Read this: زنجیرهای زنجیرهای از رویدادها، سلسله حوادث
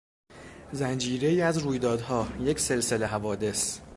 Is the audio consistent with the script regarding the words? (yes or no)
no